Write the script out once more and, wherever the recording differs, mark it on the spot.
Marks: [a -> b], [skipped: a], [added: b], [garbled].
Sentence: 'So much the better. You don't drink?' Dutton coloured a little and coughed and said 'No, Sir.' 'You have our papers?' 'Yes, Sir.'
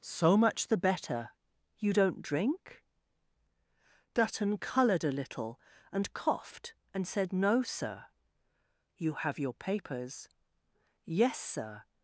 'So much the better. You don't drink?' Dutton coloured a little and coughed and said 'No, Sir.' 'You have [our -> your] papers?' 'Yes, Sir.'